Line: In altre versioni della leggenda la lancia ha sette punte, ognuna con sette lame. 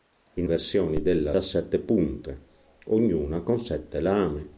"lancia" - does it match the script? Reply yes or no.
no